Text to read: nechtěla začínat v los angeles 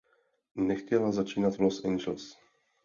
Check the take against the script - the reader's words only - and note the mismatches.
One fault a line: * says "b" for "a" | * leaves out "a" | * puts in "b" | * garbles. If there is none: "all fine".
all fine